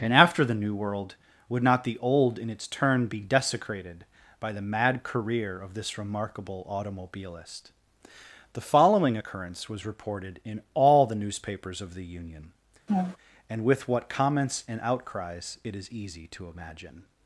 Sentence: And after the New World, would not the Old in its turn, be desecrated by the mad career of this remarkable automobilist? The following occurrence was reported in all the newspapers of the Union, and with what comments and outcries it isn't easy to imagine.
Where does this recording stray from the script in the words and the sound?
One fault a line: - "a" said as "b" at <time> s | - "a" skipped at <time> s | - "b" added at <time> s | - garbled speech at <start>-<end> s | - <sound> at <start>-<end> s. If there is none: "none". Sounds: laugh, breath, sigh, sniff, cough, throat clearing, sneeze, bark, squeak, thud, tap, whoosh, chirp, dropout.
- laugh at 12.9-13.2 s
- "isn't" said as "is" at 15.8 s